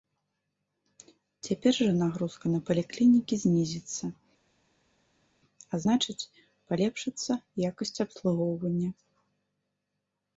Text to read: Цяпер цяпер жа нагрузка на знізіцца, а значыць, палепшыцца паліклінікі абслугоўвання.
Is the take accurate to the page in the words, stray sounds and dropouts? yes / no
no